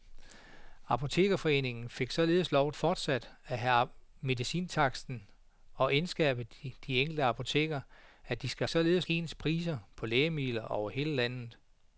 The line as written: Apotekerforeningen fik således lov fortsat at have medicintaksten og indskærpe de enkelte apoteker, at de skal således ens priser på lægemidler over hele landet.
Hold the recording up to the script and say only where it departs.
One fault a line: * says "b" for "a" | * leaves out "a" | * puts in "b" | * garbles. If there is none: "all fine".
all fine